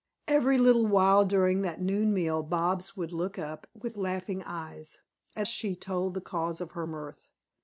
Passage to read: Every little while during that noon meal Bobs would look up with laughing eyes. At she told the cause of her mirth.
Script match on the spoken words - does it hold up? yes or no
yes